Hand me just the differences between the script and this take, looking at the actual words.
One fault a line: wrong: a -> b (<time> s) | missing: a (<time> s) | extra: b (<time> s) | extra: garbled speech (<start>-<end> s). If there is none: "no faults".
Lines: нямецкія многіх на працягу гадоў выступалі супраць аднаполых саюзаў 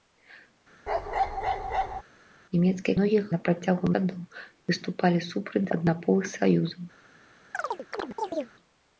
no faults